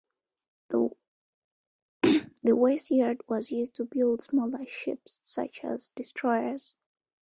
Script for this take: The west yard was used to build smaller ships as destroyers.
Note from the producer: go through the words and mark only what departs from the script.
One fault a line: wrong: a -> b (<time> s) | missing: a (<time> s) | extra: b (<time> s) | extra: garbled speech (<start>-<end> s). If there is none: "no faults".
extra: such (5.2 s)